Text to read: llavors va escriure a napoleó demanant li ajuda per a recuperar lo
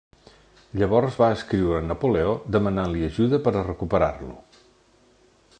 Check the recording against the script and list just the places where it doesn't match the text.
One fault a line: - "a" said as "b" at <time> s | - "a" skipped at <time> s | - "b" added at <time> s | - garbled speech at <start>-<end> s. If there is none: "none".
none